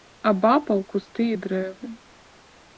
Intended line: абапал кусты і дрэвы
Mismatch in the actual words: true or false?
false